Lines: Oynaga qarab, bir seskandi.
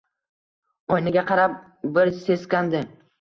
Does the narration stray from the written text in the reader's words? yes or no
no